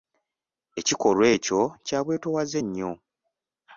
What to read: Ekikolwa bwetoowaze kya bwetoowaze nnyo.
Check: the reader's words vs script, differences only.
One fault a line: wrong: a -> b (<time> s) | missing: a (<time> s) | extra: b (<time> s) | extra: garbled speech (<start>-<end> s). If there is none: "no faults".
wrong: bwetoowaze -> ekyo (1.4 s)